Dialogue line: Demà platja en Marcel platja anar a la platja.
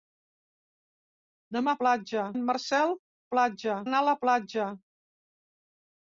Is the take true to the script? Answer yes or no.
yes